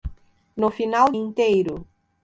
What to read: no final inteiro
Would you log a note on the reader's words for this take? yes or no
no